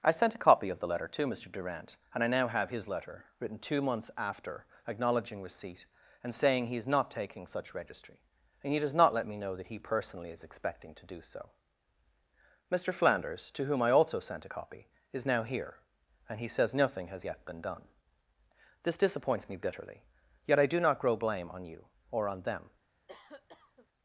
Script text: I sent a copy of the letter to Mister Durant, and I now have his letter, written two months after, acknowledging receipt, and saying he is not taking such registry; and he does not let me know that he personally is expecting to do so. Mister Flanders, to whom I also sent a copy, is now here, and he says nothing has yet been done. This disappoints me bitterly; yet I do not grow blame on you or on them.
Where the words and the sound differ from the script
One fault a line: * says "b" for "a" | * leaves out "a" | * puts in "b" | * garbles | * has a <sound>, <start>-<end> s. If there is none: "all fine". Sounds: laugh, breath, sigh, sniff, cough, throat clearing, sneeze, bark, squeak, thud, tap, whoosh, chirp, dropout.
* has a cough, 23.1-23.9 s